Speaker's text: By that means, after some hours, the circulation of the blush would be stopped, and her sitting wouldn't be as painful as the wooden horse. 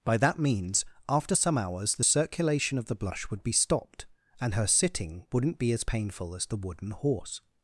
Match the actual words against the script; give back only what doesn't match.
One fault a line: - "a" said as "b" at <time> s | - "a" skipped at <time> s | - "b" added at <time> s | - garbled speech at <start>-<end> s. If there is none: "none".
none